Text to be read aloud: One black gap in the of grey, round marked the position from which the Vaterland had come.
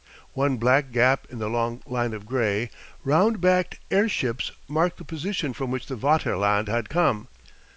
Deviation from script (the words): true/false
true